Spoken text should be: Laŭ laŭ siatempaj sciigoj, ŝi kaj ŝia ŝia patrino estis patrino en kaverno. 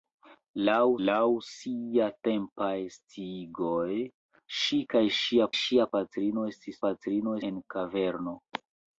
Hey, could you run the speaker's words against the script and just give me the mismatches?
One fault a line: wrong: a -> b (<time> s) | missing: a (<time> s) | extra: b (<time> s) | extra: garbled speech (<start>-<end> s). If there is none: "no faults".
no faults